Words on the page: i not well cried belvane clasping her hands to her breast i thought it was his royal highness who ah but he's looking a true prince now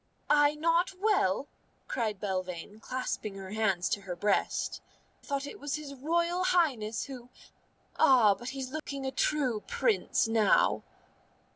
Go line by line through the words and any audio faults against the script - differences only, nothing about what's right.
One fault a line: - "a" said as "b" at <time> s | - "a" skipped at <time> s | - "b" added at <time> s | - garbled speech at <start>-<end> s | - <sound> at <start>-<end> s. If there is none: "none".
- "i" skipped at 4.8 s
- dropout at 8.8-8.9 s